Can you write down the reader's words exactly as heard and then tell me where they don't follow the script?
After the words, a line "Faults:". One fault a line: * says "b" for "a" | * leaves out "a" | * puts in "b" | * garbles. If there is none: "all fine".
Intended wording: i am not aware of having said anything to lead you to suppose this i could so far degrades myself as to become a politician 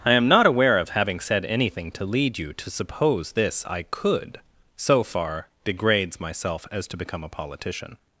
i am not aware of having said anything to lead you to suppose this i could so far degrades myself as to become a politician
Faults:
all fine